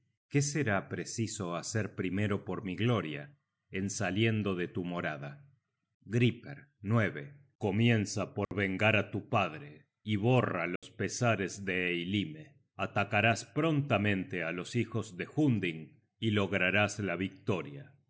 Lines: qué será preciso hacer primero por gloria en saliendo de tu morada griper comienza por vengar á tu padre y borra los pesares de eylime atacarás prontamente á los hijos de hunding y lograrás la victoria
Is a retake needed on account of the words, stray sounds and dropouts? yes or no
yes